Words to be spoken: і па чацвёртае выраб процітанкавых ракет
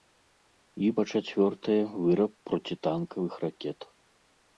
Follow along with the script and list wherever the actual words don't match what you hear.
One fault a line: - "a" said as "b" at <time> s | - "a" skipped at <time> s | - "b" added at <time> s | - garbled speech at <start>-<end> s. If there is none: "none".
none